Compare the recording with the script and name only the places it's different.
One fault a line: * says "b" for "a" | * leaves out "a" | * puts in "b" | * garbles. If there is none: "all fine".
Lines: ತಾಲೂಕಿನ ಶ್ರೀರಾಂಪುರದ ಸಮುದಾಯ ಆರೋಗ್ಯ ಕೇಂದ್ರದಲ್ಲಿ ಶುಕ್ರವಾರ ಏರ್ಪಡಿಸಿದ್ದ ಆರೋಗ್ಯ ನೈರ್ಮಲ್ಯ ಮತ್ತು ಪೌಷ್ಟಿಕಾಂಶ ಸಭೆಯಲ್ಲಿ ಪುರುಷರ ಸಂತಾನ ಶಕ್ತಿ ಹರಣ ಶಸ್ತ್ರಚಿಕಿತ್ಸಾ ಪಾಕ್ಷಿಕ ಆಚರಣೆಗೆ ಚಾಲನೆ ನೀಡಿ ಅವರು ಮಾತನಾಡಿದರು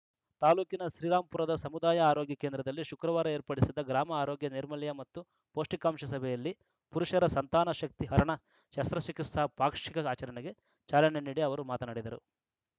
* puts in "ಗ್ರಾಮ"